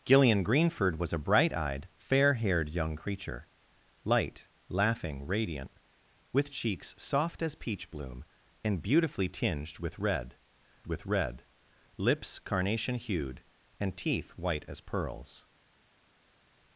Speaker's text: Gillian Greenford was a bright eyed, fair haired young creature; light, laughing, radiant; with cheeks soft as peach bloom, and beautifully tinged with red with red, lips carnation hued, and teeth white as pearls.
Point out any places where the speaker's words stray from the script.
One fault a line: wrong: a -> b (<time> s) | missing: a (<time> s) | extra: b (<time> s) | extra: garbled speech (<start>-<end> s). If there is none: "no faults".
no faults